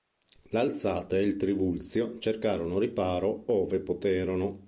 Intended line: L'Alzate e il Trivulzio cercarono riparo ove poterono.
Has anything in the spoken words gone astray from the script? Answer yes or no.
no